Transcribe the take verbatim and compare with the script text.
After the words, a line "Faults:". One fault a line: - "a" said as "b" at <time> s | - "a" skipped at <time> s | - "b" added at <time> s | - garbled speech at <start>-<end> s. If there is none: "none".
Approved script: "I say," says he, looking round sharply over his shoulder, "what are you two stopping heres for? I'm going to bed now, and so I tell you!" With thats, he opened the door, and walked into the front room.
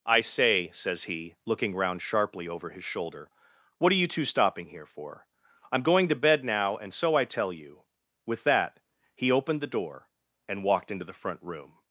"I say," says he, looking round sharply over his shoulder, "what are you two stopping here for? I'm going to bed now, and so I tell you!" With that, he opened the door, and walked into the front room.
Faults:
- "heres" said as "here" at 4.7 s
- "thats" said as "that" at 8.4 s